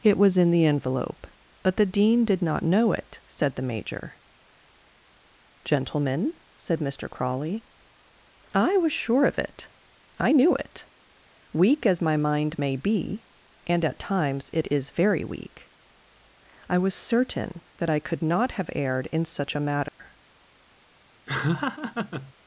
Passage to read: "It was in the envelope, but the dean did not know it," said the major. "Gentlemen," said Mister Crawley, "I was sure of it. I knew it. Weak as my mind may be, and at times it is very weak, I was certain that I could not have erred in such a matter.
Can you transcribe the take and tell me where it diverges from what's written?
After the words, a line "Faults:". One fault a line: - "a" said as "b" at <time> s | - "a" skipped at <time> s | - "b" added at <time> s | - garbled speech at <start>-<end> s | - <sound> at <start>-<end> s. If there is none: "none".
"It was in the envelope, but the dean did not know it," said the major. "Gentlemen," said Mister Crawley, "I was sure of it. I knew it. Weak as my mind may be, and at times it is very weak, I was certain that I could not have erred in such a matter.
Faults:
- dropout at 19.9-20.0 s
- laugh at 21.3-22.3 s